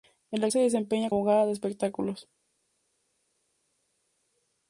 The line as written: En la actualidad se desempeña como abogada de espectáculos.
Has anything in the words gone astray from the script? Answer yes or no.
yes